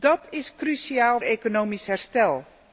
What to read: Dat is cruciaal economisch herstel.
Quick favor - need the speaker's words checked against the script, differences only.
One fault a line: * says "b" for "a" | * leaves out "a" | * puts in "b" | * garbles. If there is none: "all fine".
all fine